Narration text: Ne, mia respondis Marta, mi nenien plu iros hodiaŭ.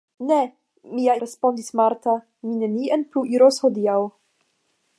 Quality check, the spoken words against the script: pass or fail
pass